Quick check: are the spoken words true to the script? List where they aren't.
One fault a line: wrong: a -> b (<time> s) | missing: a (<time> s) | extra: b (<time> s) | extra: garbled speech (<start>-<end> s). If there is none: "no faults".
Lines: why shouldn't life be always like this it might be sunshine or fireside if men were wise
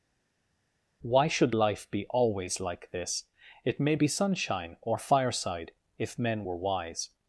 wrong: shouldn't -> should (1.3 s)
wrong: might -> may (3.8 s)